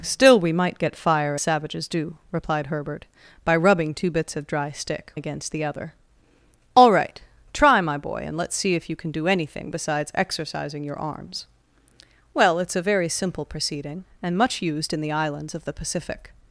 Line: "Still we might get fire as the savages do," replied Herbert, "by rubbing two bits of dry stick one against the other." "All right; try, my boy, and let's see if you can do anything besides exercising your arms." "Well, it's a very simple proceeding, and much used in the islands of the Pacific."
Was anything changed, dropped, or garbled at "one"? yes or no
yes